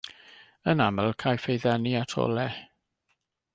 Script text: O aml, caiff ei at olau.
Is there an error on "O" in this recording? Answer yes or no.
yes